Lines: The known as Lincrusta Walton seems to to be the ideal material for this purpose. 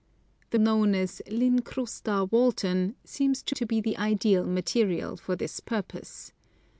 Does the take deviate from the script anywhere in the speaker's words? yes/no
no